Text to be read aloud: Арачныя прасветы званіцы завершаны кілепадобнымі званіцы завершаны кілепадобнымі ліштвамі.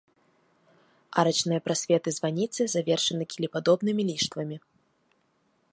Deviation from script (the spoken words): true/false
true